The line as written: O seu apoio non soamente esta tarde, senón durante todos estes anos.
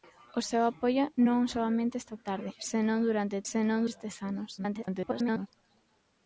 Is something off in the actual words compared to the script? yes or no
yes